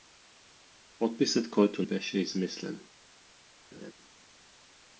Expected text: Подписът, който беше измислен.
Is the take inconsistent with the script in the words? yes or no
no